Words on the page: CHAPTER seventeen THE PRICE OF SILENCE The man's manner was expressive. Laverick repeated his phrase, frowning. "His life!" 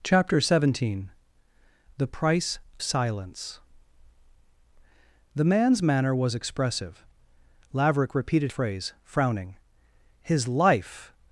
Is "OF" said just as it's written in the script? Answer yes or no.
no